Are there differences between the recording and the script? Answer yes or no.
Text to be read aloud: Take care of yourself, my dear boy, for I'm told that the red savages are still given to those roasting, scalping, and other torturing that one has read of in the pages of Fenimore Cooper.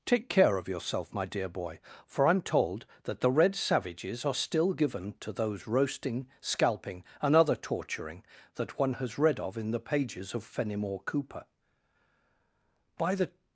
yes